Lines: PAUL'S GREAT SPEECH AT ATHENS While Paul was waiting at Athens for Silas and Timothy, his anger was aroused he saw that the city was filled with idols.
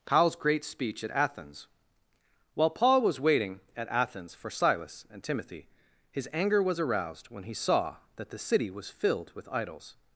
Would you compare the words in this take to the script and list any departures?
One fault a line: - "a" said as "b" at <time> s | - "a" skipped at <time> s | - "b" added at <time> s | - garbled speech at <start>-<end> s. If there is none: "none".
- "when" added at 7.3 s